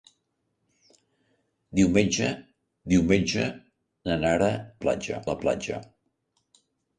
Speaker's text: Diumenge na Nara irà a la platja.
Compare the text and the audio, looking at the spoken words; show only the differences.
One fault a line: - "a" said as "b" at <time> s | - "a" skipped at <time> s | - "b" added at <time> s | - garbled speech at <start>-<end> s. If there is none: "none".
- "diumenge" added at 2.9 s
- "irà" said as "platja" at 4.9 s